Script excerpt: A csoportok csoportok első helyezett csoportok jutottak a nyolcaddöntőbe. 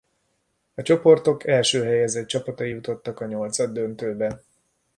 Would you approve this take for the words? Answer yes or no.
no